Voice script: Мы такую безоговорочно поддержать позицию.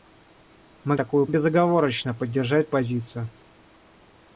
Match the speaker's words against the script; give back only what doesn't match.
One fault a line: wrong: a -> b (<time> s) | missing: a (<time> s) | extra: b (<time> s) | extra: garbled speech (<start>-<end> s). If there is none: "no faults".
no faults